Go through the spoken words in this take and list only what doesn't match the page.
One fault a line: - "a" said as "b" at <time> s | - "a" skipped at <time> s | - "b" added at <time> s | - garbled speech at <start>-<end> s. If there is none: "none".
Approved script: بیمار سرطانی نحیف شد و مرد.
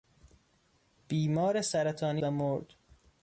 - "نحیف شد" skipped at 2.2 s